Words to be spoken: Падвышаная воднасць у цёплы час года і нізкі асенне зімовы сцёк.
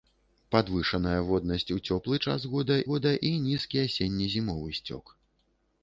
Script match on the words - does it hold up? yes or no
no